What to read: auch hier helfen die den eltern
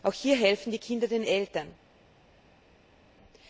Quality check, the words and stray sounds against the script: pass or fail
fail